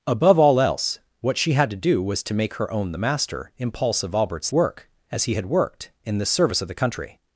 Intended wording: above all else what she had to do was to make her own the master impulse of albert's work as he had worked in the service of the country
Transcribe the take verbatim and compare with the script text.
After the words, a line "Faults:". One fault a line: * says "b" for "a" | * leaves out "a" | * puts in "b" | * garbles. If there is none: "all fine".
above all else what she had to do was to make her own the master impulse of albert's work as he had worked in the service of the country
Faults:
all fine